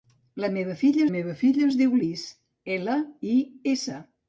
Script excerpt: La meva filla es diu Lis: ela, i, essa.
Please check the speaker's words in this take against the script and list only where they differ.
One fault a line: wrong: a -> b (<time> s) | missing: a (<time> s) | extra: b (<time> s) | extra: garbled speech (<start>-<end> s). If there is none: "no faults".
extra: meva filla (1.1 s)